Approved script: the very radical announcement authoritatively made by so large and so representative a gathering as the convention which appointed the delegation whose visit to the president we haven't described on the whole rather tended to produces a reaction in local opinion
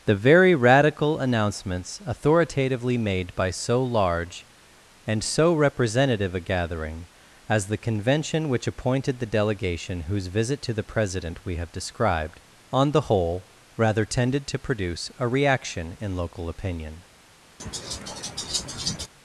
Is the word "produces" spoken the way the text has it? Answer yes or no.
no